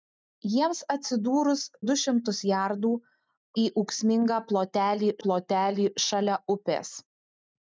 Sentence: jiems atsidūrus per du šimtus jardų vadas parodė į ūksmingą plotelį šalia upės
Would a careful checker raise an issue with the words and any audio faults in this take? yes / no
yes